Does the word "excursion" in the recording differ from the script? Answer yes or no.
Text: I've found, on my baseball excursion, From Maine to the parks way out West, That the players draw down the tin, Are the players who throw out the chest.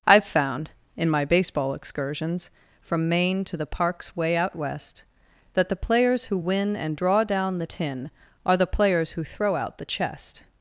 yes